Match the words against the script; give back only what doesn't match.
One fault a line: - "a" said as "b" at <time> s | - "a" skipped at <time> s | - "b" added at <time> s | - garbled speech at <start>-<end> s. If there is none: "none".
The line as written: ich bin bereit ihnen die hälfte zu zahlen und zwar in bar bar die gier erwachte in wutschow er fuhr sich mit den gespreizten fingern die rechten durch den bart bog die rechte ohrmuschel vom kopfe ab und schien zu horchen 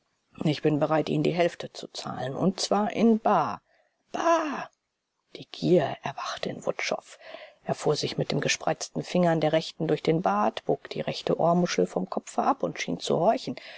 - "die" said as "der" at 9.4 s